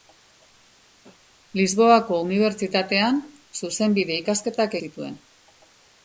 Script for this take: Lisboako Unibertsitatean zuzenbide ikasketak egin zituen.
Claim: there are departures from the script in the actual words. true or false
true